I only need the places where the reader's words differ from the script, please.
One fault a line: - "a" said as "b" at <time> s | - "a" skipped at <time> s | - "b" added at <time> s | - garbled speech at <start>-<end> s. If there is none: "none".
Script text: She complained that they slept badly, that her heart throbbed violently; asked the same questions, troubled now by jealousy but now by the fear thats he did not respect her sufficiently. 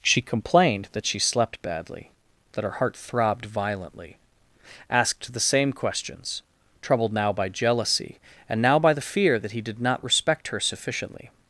- "they" said as "she" at 1.1 s
- "but" said as "and" at 8.5 s
- "thats" said as "that" at 9.4 s